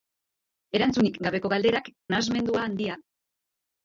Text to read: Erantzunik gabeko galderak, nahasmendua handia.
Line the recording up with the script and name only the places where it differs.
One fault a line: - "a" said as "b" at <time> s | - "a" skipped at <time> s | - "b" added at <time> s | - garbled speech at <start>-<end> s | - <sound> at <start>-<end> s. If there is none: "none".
none